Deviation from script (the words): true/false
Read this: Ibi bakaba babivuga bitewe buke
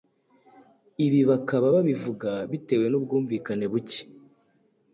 true